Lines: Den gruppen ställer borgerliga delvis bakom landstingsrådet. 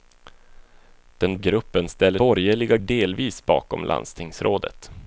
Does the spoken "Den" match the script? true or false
true